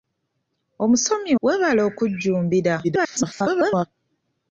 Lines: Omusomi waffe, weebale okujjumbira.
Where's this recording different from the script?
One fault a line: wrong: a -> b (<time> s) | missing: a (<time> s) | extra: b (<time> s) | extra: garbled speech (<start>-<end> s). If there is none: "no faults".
missing: waffe (1.3 s)
extra: garbled speech (2.8-3.9 s)